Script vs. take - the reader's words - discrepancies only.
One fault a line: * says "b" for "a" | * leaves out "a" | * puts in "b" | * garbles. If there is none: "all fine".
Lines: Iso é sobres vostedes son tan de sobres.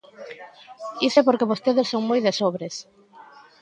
* says "porque" for "sobres"
* says "moi" for "tan"